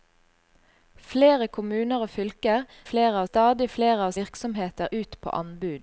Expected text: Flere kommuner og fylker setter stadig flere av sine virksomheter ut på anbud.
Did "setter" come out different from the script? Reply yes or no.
yes